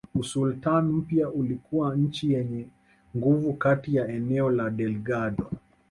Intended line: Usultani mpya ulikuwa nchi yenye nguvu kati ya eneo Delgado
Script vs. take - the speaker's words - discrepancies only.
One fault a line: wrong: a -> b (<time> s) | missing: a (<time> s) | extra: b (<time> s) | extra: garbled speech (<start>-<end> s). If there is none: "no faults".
extra: la (4.5 s)